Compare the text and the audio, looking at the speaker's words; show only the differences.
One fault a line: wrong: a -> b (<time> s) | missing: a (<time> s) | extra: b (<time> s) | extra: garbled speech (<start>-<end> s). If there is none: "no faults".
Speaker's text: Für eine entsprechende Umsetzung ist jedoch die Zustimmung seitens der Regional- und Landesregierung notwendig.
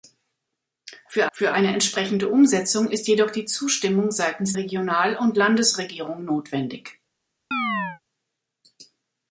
extra: für (1.3 s)
missing: der (4.6 s)